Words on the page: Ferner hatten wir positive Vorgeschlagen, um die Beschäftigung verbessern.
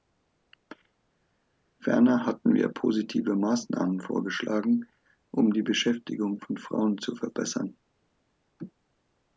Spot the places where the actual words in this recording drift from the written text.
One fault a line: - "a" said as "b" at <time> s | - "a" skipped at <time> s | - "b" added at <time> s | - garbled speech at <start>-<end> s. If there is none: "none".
- "Maßnahmen" added at 3.3 s
- "von Frauen zu" added at 6.4 s